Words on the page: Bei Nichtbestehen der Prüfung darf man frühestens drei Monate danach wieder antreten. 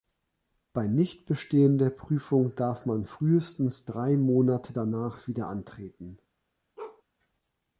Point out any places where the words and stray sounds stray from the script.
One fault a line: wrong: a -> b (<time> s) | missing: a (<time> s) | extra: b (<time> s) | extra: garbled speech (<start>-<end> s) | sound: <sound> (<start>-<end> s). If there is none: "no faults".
sound: bark (6.8-7.0 s)